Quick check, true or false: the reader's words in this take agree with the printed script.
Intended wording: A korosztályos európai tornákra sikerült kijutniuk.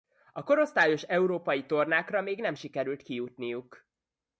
false